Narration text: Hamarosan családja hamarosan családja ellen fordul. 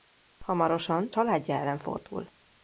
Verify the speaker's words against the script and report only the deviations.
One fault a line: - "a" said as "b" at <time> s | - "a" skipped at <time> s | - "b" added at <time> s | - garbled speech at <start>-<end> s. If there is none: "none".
- "hamarosan családja" skipped at 1.6 s